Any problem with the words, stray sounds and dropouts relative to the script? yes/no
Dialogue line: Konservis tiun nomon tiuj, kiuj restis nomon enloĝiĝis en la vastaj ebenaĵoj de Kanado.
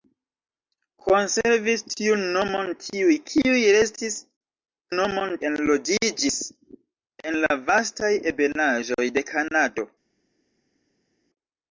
no